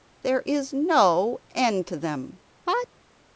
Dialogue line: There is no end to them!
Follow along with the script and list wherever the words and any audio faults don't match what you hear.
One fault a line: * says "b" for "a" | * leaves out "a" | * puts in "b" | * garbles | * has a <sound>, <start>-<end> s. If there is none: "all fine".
* has a sneeze, 2.7-2.9 s